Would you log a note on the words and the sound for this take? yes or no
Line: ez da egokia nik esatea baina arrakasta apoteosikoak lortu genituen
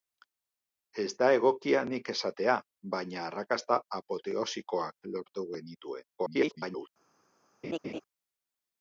yes